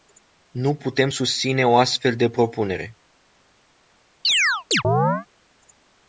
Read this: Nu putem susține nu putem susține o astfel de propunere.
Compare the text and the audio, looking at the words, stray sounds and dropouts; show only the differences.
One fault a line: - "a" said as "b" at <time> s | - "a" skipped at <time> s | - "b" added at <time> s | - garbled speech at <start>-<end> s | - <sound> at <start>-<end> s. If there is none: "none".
- "nu putem susține" skipped at 1.7 s
- chirp at 4.2-5.3 s